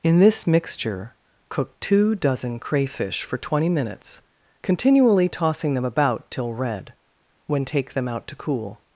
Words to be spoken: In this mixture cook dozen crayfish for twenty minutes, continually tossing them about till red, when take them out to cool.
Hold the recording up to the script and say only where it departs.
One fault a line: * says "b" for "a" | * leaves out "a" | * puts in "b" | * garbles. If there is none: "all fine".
* puts in "two"